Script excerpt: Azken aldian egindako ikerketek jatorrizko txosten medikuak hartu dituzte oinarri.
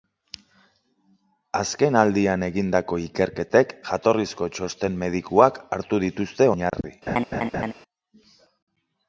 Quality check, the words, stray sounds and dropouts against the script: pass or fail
fail